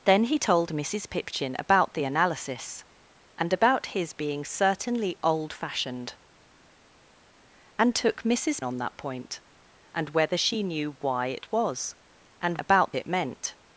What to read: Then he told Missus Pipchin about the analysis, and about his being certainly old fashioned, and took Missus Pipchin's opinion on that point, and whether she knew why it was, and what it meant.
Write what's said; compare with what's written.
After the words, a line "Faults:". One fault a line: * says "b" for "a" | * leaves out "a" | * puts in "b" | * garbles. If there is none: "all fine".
Then he told Missus Pipchin about the analysis, and about his being certainly old fashioned, and took Missus On that point, and whether she knew why it was, and about it meant.
Faults:
* leaves out "Pipchin's opinion"
* says "about" for "what"